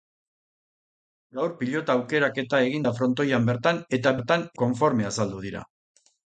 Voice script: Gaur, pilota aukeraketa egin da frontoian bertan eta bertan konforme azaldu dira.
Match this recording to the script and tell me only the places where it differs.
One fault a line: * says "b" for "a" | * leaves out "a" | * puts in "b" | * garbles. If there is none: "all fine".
all fine